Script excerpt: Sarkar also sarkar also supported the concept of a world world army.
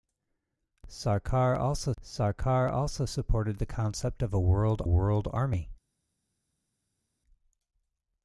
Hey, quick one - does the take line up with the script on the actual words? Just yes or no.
yes